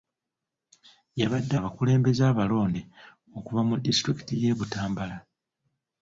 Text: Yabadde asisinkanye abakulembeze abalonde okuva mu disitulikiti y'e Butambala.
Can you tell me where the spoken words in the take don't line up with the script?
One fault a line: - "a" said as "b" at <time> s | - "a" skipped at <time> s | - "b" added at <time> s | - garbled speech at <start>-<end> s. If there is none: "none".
- "asisinkanye" skipped at 1.6 s